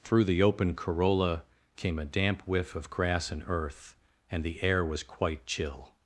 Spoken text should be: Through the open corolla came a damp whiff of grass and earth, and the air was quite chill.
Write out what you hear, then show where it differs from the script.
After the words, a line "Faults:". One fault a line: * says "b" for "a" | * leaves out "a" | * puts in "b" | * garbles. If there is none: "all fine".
Through the open corolla came a damp whiff of grass and earth, and the air was quite chill.
Faults:
all fine